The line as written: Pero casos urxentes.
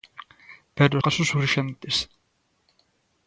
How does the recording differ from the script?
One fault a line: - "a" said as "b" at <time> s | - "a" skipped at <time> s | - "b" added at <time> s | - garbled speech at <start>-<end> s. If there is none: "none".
none